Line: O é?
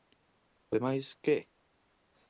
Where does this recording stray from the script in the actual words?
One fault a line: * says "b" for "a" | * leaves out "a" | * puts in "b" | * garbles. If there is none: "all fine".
* puts in "demais que"